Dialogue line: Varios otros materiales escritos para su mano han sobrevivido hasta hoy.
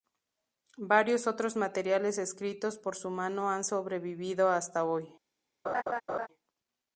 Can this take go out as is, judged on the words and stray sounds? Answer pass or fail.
fail